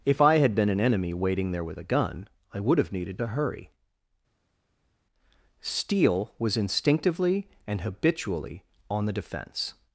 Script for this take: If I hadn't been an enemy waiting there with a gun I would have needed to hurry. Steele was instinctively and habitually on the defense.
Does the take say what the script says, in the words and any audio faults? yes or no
no